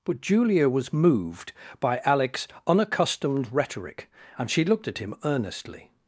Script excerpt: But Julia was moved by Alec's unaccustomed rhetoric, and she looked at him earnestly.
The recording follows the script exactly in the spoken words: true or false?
true